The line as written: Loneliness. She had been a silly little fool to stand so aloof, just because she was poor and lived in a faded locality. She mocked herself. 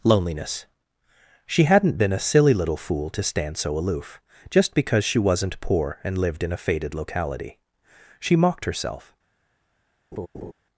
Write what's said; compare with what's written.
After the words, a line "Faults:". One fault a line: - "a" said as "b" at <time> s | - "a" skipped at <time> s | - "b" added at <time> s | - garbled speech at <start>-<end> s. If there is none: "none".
Loneliness. She hadn't been a silly little fool to stand so aloof, just because she wasn't poor and lived in a faded locality. She mocked herself.
Faults:
- "had" said as "hadn't" at 1.6 s
- "was" said as "wasn't" at 5.2 s